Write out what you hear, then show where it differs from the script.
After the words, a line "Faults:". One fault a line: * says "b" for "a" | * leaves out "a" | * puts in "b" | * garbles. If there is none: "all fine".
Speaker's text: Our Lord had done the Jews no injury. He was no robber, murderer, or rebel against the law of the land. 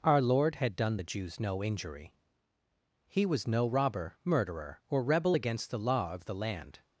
Our Lord had done the Jews no injury. He was no robber, murderer, or rebel against the law of the land.
Faults:
all fine